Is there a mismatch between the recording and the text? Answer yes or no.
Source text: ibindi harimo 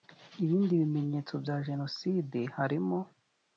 yes